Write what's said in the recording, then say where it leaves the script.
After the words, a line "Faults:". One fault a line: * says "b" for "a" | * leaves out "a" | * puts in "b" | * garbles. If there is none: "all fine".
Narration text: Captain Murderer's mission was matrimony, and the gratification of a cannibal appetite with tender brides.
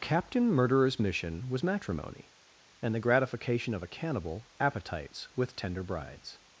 Captain Murderer's mission was matrimony, and the gratification of a cannibal appetites with tender brides.
Faults:
* says "appetites" for "appetite"